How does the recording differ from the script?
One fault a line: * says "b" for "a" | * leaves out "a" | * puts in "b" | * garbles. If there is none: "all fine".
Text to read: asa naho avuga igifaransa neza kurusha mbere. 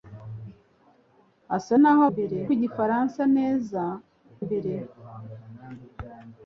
* says "mbere" for "avuga"
* leaves out "kurusha"